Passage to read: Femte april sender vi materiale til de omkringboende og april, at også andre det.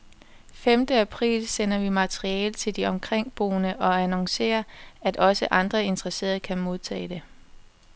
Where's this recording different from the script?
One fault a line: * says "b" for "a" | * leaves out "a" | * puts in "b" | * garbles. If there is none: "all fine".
* says "annoncerer" for "april"
* puts in "interesserede kan modtage"